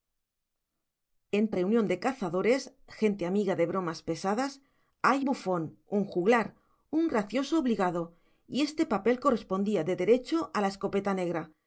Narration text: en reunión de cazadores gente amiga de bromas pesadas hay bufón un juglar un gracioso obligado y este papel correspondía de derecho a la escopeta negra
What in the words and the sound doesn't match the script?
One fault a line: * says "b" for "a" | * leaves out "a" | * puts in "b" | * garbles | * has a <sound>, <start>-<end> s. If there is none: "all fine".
all fine